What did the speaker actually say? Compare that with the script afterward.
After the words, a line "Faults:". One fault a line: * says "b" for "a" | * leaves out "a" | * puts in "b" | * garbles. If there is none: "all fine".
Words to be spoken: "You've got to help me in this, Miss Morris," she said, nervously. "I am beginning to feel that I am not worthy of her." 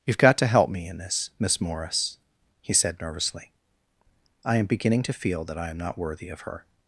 "You've got to help me in this, Miss Morris," he said, nervously. "I am beginning to feel that I am not worthy of her."
Faults:
* says "he" for "she"